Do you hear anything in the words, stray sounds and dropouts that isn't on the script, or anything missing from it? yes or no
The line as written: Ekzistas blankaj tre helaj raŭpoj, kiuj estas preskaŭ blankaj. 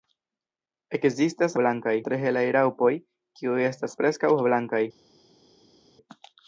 no